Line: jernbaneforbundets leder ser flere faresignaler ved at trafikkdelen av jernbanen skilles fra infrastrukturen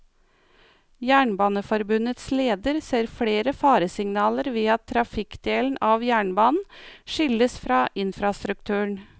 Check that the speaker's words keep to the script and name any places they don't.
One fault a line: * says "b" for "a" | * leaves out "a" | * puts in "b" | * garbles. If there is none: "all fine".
all fine